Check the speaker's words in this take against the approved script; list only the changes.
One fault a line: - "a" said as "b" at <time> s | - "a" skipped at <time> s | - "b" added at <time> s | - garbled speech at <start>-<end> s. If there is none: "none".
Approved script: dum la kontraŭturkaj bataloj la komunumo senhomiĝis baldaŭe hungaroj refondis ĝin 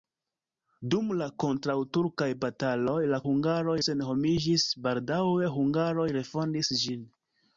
- "komunumo" said as "hungaroj" at 3.3 s